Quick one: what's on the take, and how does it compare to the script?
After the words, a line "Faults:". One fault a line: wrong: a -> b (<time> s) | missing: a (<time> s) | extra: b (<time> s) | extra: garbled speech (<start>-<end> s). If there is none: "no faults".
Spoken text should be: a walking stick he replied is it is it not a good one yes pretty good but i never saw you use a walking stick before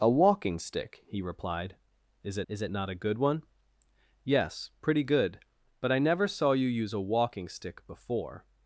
a walking stick he replied is it is it not a good one yes pretty good but i never saw you use a walking stick before
Faults:
no faults